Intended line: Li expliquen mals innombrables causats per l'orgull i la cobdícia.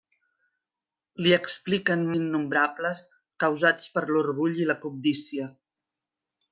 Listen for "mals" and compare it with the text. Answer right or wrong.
wrong